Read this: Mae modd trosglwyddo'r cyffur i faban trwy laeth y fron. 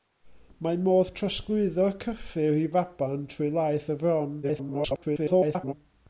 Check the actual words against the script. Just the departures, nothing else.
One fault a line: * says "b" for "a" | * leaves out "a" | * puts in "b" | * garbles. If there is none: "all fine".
* garbles